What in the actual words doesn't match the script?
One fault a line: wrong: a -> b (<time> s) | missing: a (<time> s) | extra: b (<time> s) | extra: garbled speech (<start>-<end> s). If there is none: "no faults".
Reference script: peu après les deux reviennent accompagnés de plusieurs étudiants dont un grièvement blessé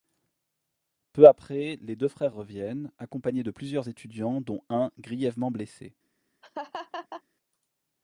extra: frères (2.1 s)